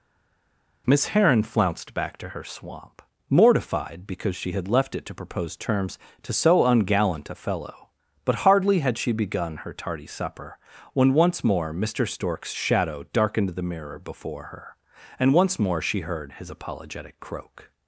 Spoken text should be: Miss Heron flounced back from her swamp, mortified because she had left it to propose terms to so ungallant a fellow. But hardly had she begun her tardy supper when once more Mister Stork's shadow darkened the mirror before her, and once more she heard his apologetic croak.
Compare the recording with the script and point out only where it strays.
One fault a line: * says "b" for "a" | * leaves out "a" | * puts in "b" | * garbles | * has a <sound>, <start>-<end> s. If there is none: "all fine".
* says "to" for "from"